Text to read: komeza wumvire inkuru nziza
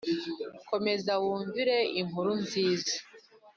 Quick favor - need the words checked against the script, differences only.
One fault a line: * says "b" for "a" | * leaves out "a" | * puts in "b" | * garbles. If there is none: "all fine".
all fine